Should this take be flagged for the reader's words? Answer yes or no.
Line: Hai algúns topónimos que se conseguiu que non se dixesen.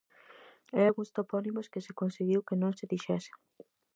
no